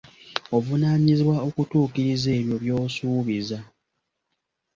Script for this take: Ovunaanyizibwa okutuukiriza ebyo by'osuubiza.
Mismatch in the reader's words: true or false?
false